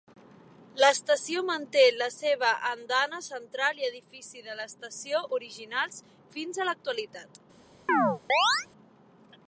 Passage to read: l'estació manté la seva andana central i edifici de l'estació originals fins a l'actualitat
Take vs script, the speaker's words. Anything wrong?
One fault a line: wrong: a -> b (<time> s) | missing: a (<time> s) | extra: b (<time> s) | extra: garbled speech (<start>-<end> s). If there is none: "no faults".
no faults